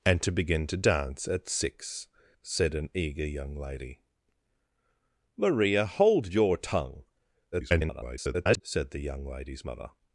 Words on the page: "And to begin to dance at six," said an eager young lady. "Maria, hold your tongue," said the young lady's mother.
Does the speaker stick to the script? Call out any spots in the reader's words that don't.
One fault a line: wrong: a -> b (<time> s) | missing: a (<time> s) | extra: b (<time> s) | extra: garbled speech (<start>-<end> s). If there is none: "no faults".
extra: garbled speech (7.5-8.6 s)